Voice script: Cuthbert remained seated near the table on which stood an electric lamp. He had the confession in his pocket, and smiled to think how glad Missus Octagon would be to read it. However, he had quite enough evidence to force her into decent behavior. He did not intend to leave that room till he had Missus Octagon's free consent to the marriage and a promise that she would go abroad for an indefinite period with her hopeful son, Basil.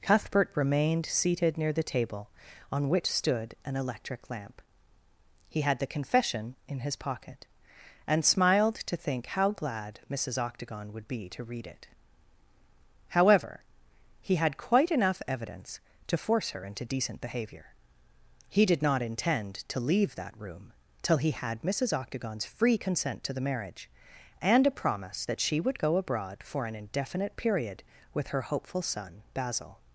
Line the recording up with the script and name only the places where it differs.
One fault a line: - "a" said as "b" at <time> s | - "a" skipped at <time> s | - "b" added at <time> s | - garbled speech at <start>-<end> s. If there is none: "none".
none